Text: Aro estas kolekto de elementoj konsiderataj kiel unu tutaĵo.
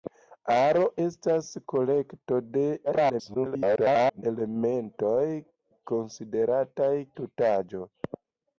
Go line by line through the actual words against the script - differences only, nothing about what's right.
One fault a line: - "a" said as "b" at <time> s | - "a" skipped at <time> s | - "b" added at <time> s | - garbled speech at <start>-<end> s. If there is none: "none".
- garbled speech at 2.9-4.2 s
- "kiel unu" skipped at 6.9 s